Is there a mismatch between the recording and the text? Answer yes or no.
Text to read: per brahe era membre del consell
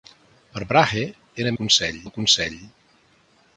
yes